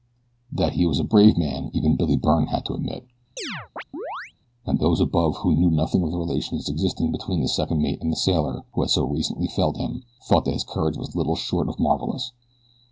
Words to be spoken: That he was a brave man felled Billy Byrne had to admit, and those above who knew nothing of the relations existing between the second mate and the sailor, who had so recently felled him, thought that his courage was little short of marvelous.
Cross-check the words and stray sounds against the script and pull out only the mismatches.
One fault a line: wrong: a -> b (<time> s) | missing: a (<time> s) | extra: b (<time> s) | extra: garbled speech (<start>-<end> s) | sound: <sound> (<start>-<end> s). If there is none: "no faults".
wrong: felled -> even (1.8 s)
sound: chirp (3.4-4.3 s)